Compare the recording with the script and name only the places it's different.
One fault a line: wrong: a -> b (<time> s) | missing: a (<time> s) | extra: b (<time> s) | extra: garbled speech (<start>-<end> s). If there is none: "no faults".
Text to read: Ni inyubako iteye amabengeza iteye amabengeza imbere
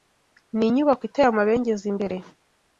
missing: iteye amabengeza (1.8 s)